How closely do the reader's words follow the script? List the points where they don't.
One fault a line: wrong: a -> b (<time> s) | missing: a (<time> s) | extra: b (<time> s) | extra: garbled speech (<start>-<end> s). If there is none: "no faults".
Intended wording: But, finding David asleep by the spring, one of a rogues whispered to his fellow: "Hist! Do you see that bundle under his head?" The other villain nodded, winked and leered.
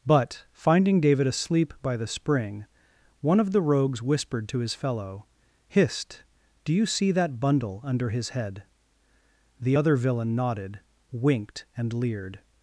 wrong: a -> the (3.5 s)